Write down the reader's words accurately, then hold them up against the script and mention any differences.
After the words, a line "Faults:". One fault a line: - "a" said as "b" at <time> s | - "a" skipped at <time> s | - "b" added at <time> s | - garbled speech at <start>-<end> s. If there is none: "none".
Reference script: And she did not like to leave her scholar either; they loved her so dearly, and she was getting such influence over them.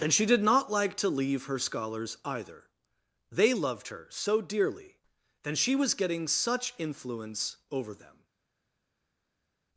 And she did not like to leave her scholars either; they loved her so dearly, and she was getting such influence over them.
Faults:
- "scholar" said as "scholars" at 1.6 s